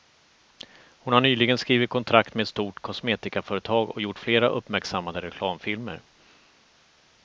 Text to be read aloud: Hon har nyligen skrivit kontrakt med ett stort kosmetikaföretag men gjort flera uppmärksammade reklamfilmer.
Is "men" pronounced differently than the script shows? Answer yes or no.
yes